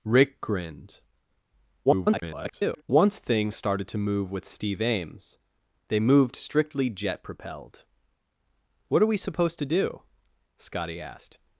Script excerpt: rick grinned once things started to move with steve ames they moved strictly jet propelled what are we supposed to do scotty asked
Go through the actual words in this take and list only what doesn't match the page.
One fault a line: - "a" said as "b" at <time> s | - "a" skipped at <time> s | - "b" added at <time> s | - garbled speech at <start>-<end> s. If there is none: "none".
- garbled speech at 1.9-2.8 s